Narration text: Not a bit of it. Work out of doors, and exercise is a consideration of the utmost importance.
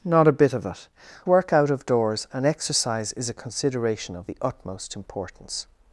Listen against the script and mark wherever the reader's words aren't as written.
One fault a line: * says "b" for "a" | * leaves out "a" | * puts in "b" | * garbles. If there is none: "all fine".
all fine